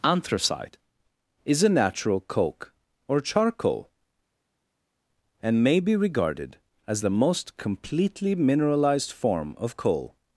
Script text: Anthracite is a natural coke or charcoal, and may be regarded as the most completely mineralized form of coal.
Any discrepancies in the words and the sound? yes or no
no